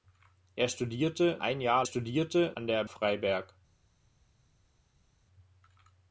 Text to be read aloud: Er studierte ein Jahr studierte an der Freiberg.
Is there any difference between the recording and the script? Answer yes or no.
no